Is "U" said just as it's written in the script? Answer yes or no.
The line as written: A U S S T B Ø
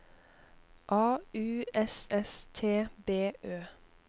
yes